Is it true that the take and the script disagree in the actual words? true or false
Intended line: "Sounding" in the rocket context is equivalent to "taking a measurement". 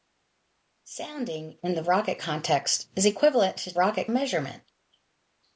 true